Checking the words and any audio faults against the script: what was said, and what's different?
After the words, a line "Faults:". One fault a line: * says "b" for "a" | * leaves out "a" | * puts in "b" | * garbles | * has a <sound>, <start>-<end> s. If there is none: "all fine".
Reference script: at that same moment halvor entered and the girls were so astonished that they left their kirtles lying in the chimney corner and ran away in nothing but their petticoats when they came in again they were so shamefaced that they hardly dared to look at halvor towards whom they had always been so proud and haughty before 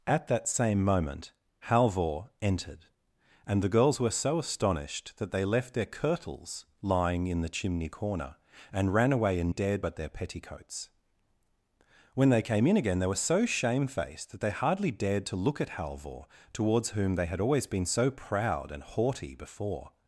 at that same moment halvor entered and the girls were so astonished that they left their kirtles lying in the chimney corner and ran away in dared but their petticoats when they came in again they were so shamefaced that they hardly dared to look at halvor towards whom they had always been so proud and haughty before
Faults:
* says "dared" for "nothing"